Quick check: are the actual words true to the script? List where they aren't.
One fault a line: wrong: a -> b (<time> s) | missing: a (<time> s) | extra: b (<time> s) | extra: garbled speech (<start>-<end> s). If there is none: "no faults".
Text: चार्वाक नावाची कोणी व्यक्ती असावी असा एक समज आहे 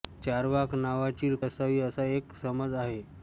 missing: कोणी व्यक्ती (1.3 s)